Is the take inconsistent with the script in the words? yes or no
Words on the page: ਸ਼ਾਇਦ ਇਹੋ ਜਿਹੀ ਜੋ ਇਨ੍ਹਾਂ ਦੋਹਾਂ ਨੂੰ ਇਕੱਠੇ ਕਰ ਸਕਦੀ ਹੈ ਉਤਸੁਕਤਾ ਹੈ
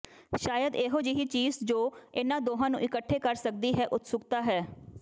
yes